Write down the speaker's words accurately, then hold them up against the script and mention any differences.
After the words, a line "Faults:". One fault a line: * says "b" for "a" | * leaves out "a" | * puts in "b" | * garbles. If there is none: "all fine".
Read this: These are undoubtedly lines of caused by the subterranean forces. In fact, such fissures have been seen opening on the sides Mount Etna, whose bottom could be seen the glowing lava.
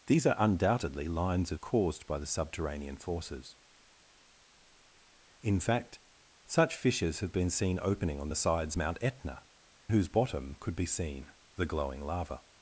These are undoubtedly lines of caused by the subterranean forces. In fact, such fissures have been seen opening on the sides Mount Etna, whose bottom could be seen the glowing lava.
Faults:
all fine